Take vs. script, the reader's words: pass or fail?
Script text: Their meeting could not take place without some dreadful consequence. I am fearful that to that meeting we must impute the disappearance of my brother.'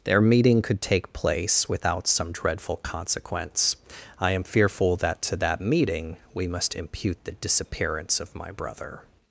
fail